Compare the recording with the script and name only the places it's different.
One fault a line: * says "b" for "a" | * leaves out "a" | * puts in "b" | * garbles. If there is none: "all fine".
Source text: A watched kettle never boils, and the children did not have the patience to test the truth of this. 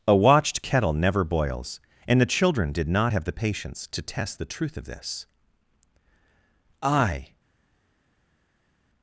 * puts in "I"